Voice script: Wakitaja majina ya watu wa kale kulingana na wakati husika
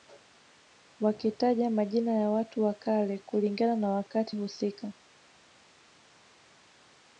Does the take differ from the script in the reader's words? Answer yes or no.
no